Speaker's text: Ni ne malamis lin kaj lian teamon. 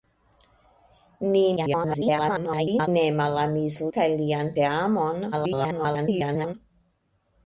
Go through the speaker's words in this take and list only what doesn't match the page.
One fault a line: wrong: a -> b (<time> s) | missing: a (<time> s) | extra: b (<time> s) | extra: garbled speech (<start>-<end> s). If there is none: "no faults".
extra: garbled speech (1.6-2.9 s)
missing: lin (3.8 s)
extra: garbled speech (5.3-6.5 s)